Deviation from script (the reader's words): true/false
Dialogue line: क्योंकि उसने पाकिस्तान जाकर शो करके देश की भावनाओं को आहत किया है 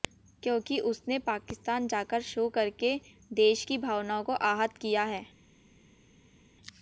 false